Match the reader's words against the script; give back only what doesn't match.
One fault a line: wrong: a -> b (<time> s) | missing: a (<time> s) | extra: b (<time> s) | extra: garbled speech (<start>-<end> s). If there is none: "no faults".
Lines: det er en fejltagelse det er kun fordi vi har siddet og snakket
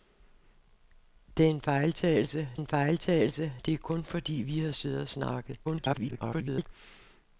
extra: en fejltagelse (2.5 s)
extra: garbled speech (5.6-6.7 s)